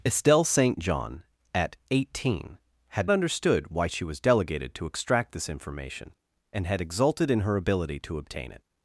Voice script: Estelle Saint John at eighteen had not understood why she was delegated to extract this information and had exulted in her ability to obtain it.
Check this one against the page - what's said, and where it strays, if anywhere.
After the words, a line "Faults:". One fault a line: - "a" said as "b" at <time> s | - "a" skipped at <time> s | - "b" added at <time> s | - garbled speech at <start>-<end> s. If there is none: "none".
Estelle Saint John at eighteen had understood why she was delegated to extract this information and had exulted in her ability to obtain it.
Faults:
- "not" skipped at 3.1 s